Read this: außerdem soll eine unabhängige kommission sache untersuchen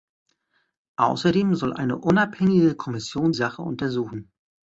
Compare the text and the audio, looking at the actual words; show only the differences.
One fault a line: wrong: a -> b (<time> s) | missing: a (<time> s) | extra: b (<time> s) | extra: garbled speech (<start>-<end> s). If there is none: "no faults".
no faults